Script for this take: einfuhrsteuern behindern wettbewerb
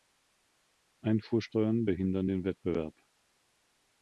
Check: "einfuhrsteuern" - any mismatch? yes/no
no